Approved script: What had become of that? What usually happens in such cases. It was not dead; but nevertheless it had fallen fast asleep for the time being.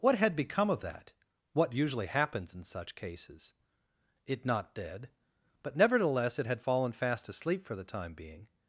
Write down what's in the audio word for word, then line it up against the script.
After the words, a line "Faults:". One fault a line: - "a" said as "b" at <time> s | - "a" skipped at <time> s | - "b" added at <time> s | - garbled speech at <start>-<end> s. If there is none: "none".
What had become of that? What usually happens in such cases. It not dead; but nevertheless it had fallen fast asleep for the time being.
Faults:
- "was" skipped at 4.5 s